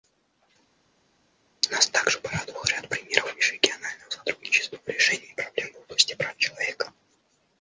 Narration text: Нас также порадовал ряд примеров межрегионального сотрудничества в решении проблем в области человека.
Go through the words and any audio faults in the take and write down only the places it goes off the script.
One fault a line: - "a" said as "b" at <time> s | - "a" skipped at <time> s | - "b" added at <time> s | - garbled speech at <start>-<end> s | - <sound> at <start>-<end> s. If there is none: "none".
- "прав" added at 6.1 s